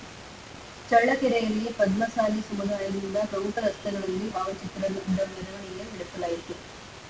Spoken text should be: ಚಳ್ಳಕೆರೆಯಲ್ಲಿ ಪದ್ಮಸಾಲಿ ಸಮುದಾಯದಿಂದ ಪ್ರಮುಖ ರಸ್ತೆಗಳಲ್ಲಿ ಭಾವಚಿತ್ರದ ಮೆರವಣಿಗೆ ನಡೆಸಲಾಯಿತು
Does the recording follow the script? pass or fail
pass